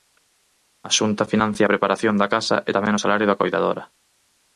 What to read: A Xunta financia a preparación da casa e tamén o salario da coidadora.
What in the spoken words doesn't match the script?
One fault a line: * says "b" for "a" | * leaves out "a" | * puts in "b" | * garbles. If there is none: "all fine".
all fine